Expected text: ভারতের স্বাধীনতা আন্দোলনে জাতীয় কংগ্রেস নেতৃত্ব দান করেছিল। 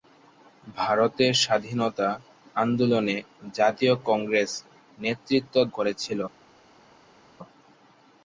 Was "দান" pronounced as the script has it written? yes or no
no